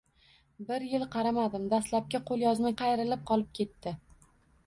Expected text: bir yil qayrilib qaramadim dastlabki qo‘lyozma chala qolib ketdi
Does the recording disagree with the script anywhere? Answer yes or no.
yes